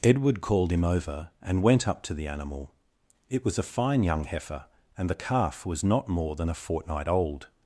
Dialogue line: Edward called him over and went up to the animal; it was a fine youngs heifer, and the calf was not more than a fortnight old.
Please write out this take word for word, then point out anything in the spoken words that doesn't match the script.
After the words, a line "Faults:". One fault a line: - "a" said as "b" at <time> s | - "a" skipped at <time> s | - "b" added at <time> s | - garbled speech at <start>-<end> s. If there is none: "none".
Edward called him over and went up to the animal; it was a fine young heifer, and the calf was not more than a fortnight old.
Faults:
- "youngs" said as "young" at 4.0 s